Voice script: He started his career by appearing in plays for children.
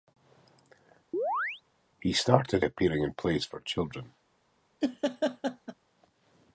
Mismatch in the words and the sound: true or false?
true